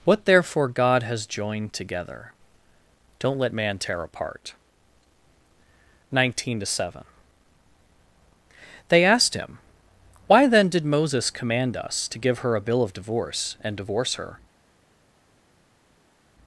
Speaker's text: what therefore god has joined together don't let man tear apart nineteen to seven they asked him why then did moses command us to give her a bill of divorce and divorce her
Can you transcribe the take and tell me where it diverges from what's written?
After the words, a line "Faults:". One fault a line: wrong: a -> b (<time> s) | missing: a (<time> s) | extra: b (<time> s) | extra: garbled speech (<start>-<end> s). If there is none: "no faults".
what therefore god has joined together don't let man tear apart nineteen to seven they asked him why then did moses command us to give her a bill of divorce and divorce her
Faults:
no faults